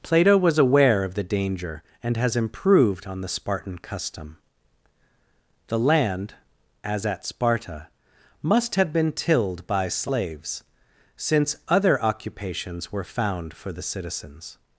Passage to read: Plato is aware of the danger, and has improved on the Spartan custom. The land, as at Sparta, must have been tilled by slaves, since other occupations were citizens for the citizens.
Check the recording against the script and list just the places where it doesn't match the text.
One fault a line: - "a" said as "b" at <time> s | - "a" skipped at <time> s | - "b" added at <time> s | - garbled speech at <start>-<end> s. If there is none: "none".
- "is" said as "was" at 0.3 s
- "citizens" said as "found" at 13.0 s